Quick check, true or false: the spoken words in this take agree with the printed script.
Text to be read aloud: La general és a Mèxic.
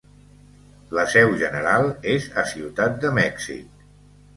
false